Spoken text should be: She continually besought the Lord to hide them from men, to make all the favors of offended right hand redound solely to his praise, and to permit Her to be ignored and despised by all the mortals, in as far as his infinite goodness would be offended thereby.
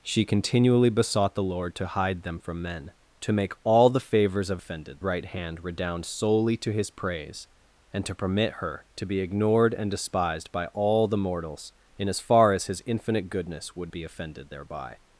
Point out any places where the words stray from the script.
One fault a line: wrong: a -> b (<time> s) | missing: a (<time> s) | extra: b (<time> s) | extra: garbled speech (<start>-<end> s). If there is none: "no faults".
no faults